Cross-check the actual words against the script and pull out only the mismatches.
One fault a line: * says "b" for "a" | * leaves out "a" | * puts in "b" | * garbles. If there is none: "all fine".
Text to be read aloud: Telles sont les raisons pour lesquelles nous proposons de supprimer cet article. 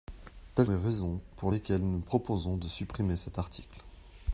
* leaves out "sont"